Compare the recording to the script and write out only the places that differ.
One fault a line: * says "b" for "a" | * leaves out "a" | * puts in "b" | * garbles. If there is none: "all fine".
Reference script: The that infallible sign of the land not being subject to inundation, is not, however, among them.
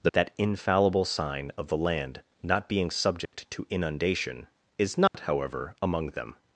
all fine